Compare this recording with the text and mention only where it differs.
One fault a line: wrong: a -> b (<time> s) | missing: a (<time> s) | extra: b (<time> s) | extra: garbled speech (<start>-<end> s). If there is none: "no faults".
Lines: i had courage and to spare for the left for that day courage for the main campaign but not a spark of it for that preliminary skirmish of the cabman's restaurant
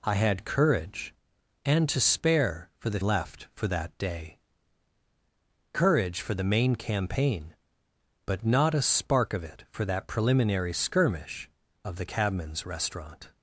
no faults